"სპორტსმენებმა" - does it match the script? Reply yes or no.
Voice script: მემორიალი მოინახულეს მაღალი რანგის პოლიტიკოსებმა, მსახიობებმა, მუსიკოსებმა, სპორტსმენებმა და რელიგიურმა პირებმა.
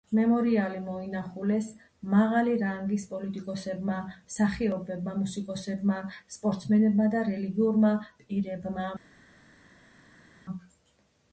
yes